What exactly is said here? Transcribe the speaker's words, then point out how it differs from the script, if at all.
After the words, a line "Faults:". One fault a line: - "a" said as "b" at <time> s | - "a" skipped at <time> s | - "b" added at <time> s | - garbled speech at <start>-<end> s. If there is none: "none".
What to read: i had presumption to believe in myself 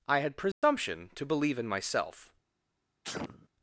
i had presumption to believe in myself
Faults:
none